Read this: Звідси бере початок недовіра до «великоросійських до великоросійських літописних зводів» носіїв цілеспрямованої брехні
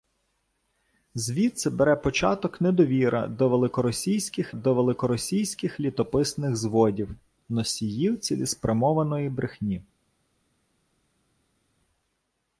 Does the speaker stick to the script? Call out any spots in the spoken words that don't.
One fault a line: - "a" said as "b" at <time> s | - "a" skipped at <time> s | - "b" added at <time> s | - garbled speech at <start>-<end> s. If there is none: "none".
none